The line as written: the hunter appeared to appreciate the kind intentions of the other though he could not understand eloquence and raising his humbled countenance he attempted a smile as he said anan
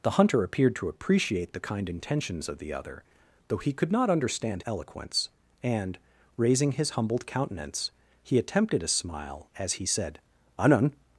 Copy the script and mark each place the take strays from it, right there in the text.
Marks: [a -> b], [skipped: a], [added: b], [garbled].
the hunter appeared to appreciate the kind intentions of the other though he could not understand eloquence and raising his humbled countenance he attempted a smile as he said anan